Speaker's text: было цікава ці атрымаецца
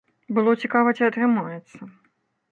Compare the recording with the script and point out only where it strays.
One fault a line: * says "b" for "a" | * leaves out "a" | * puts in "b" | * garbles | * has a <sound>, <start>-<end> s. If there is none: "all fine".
all fine